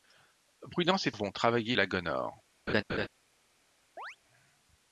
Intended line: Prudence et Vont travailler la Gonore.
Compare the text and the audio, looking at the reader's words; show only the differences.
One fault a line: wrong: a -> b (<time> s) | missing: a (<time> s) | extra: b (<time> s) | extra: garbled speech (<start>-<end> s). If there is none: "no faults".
no faults